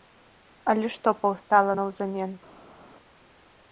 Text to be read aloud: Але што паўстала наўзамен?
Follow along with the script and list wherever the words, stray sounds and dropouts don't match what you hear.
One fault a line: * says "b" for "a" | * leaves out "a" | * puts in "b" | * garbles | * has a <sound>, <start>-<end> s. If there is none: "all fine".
all fine